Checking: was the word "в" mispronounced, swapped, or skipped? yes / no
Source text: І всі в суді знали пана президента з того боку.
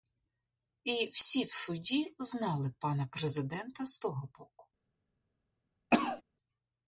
no